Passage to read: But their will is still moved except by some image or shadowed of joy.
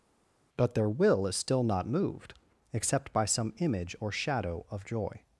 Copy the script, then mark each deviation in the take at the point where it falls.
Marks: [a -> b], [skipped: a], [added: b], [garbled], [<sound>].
But their will is still [added: not] moved except by some image or [shadowed -> shadow] of joy.